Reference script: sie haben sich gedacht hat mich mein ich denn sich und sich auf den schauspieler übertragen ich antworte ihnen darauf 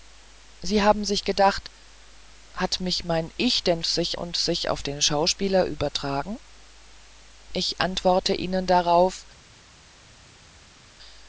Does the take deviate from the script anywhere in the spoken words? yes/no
no